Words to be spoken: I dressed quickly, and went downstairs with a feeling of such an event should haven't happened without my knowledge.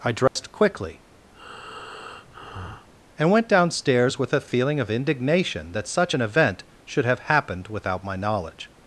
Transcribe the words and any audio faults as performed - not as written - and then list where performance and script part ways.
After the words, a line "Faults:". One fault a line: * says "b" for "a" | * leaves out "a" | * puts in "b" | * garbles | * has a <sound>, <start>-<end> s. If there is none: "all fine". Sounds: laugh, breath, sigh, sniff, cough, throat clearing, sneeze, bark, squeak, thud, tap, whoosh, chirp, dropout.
I dressed quickly, and went downstairs with a feeling of indignation that such an event should have happened without my knowledge.
Faults:
* has a dropout, 0.3-0.4 s
* has a breath, 1.3-2.9 s
* puts in "indignation that"
* says "have" for "haven't"